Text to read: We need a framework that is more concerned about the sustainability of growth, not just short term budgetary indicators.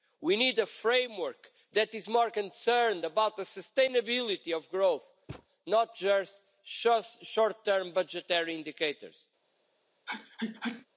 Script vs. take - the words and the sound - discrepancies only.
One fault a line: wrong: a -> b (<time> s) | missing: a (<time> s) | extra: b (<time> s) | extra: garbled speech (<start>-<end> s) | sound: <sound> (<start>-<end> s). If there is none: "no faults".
sound: thud (5.3-5.5 s)
sound: sneeze (10.1-10.9 s)